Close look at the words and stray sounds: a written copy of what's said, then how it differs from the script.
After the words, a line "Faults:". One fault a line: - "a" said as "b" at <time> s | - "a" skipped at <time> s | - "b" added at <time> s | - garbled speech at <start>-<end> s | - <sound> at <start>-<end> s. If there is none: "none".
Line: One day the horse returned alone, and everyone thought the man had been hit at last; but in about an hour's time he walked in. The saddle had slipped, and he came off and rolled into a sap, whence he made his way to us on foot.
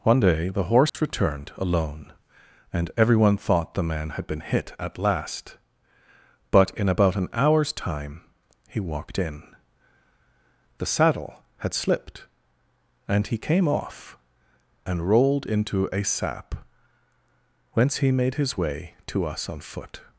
One day the horse returned alone, and everyone thought the man had been hit at last; but in about an hour's time he walked in. The saddle had slipped, and he came off and rolled into a sap, whence he made his way to us on foot.
Faults:
- dropout at 0.9-0.9 s